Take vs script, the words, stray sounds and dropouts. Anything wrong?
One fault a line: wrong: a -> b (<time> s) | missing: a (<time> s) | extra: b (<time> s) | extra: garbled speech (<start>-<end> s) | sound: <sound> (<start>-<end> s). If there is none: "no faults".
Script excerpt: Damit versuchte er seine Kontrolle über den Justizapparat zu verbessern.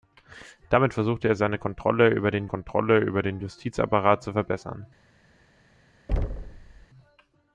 extra: Kontrolle über den (2.5 s)
sound: thud (6.1-6.9 s)